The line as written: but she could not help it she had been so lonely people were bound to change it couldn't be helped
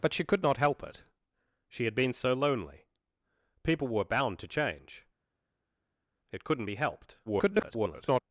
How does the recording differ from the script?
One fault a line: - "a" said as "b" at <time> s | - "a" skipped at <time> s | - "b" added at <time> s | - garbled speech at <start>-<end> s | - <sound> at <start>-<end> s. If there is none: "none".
- garbled speech at 7.3-8.2 s